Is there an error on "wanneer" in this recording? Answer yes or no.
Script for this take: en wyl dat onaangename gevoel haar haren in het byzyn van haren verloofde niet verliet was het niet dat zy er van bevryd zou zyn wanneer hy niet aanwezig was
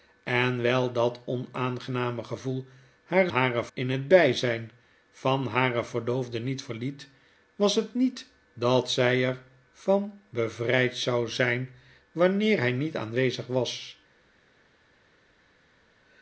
no